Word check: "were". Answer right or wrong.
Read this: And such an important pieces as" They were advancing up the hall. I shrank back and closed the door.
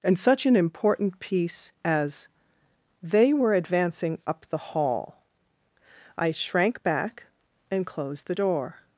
right